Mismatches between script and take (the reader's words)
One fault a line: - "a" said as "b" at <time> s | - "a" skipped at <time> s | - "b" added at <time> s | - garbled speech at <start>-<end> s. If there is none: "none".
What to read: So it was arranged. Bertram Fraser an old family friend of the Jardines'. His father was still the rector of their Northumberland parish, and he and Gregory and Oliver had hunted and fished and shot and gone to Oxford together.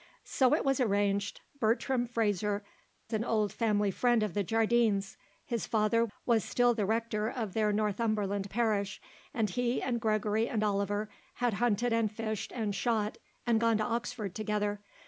none